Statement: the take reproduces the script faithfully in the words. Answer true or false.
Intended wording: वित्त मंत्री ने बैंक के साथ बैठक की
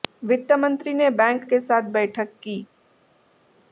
true